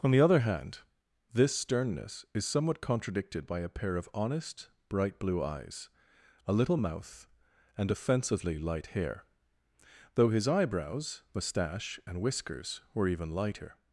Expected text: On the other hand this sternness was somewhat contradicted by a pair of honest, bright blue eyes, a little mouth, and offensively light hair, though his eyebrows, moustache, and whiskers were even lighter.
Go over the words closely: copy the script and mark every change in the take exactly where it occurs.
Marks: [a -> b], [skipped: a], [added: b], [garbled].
On the other hand this sternness [was -> is] somewhat contradicted by a pair of honest, bright blue eyes, a little mouth, and offensively light hair, though his eyebrows, moustache, and whiskers were even lighter.